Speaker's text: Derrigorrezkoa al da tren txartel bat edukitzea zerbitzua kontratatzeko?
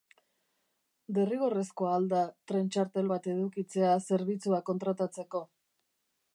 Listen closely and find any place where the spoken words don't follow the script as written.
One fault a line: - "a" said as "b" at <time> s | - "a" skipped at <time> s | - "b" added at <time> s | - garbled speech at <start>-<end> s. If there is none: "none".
none